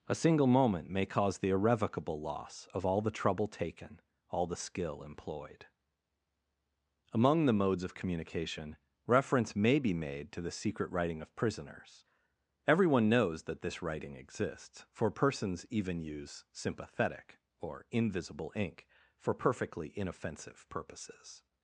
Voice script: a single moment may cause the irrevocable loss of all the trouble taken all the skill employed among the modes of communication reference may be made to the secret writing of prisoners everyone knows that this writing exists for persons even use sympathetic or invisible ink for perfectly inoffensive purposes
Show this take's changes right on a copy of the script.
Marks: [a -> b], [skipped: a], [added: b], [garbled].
a single moment may cause the irrevocable loss of all the trouble taken all the skill employed among the modes of communication reference may be made to the secret writing of prisoners everyone knows that this writing exists for persons even use sympathetic or invisible ink for perfectly inoffensive purposes